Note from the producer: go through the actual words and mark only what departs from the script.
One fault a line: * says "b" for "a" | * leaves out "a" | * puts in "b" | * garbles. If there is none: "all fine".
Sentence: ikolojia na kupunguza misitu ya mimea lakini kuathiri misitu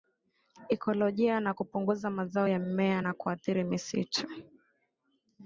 * says "mazao" for "misitu"
* says "na" for "lakini"